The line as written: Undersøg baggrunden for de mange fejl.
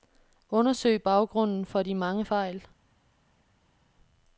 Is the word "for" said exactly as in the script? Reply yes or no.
yes